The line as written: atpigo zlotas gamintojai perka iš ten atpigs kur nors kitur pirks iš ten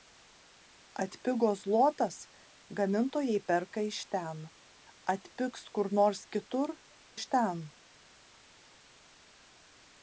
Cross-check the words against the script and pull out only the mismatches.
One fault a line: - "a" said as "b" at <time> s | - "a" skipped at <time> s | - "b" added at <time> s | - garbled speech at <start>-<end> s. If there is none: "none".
- "pirks" skipped at 6.8 s